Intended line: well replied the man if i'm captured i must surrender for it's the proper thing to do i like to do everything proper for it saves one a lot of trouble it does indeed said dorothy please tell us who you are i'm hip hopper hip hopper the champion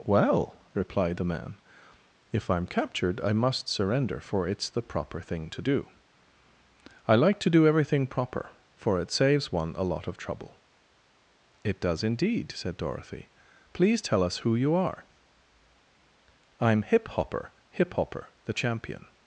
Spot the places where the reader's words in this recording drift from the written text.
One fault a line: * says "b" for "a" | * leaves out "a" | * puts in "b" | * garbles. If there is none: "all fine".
all fine